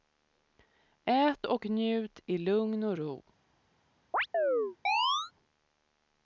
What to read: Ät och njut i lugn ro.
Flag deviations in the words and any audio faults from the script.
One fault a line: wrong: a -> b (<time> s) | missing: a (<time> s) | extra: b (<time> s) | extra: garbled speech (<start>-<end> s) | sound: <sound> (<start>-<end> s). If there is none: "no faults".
extra: och (2.8 s)
sound: chirp (4.1-5.3 s)